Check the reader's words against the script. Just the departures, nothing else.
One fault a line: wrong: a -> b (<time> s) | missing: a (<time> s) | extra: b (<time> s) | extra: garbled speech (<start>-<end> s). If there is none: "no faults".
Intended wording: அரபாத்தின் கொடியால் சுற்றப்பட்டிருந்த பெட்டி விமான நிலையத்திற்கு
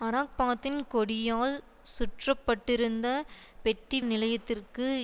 missing: விமான (4.0 s)